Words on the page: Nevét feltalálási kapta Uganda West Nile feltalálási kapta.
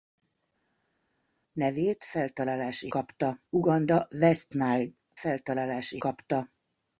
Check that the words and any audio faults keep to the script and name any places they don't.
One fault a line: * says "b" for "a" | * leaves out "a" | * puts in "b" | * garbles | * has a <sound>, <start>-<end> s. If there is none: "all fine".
all fine